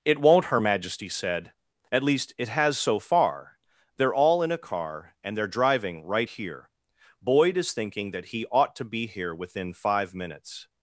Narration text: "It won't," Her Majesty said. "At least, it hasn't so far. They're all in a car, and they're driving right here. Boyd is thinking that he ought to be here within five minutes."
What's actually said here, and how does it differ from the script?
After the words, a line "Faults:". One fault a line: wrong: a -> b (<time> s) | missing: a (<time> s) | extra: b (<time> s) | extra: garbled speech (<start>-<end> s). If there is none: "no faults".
"It won't," Her Majesty said. "At least, it has so far. They're all in a car, and they're driving right here. Boyd is thinking that he ought to be here within five minutes."
Faults:
wrong: hasn't -> has (2.5 s)